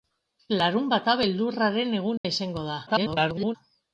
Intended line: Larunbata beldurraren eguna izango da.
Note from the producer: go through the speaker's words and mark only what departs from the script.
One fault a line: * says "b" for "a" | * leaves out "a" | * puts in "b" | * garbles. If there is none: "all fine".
* garbles